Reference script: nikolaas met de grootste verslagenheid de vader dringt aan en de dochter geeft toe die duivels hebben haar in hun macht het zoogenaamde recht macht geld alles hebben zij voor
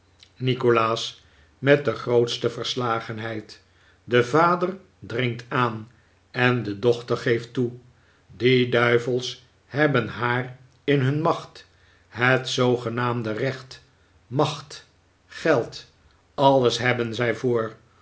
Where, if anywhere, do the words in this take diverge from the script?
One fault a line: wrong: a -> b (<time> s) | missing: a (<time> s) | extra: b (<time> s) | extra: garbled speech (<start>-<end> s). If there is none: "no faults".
no faults